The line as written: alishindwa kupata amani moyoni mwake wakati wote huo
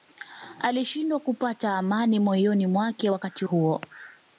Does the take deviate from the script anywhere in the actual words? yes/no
yes